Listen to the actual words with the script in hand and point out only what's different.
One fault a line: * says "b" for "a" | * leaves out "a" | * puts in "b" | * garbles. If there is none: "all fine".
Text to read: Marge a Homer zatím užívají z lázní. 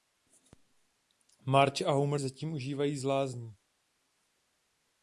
all fine